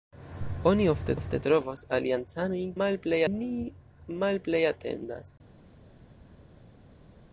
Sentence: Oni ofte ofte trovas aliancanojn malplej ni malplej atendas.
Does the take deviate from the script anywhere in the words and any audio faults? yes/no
no